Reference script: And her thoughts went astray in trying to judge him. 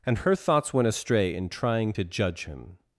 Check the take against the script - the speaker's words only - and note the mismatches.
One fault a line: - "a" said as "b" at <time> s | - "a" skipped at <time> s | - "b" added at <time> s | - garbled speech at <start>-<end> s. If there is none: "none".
none